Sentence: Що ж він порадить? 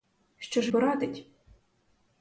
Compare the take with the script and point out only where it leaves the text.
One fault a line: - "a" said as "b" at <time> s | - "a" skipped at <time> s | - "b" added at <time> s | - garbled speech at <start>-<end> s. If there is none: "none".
- "він" skipped at 0.7 s